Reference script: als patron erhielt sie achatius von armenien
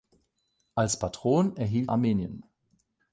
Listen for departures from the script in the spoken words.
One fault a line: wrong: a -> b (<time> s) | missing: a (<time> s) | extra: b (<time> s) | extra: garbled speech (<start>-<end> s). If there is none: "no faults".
missing: sie achatius von (1.9 s)